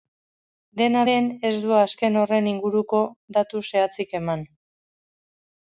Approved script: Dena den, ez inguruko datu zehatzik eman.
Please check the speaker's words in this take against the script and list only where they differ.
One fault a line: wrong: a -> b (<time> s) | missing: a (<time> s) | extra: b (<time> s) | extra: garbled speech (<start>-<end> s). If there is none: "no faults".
extra: du azken horren (1.6 s)